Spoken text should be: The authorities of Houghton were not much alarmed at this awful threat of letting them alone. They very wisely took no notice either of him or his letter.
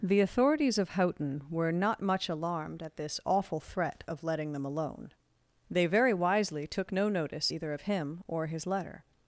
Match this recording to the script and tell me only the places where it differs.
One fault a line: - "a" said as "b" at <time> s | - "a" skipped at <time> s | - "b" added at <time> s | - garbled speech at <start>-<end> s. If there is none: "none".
none